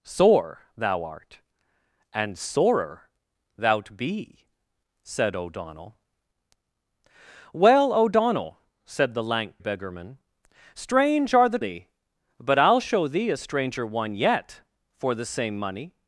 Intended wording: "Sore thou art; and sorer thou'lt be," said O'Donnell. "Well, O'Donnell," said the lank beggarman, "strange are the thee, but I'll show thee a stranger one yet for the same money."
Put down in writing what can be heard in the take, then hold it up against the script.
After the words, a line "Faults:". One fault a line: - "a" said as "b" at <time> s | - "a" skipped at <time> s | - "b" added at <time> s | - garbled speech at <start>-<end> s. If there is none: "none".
"Sore thou art; and sorer thou'lt be," said O'Donnell. "Well, O'Donnell," said the lank beggarman, "strange are the thee, but I'll show thee a stranger one yet for the same money."
Faults:
none